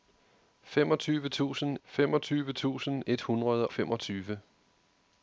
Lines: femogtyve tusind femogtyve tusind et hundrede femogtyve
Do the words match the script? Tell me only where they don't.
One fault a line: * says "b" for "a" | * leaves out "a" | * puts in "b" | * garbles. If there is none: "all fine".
all fine